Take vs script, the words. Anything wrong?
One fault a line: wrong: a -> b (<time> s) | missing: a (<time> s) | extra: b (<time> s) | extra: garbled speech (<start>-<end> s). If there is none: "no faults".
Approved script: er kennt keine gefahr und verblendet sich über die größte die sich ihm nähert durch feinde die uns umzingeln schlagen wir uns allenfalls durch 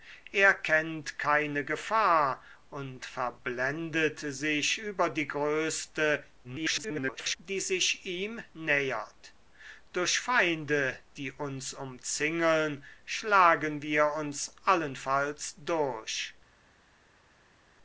extra: garbled speech (6.4-7.4 s)